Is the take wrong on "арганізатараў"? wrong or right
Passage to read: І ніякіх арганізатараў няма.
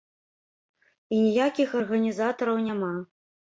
right